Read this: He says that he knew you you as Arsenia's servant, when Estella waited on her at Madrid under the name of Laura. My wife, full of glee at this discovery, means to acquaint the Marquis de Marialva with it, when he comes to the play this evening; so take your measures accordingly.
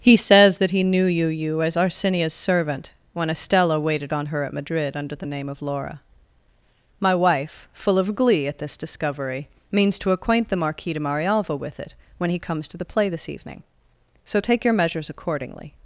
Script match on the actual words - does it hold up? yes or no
yes